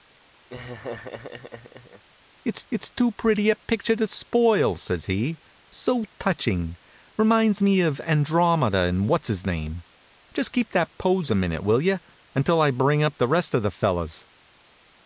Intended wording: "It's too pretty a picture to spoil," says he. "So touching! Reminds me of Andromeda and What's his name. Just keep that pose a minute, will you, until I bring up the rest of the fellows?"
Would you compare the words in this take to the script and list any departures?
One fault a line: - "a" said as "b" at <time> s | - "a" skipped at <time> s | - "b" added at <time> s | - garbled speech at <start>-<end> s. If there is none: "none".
- "it's" added at 2.7 s